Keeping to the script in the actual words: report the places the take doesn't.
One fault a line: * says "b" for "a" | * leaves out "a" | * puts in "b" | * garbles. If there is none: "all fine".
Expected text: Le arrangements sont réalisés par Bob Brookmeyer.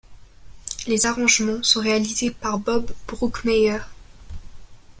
* says "Les" for "Le"